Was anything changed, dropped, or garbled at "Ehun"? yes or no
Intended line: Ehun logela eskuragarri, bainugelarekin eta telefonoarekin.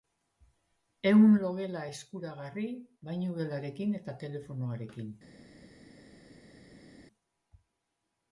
no